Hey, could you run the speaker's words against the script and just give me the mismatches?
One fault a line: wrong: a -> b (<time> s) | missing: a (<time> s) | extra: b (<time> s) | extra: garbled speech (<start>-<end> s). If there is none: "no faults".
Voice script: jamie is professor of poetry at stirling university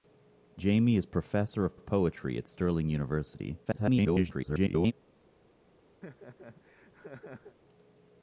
extra: of (1.7 s)
extra: garbled speech (3.6-4.9 s)